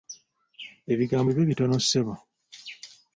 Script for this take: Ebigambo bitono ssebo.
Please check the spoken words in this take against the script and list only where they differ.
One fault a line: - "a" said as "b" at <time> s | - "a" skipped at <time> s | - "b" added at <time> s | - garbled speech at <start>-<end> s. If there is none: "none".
- "bibe" added at 1.3 s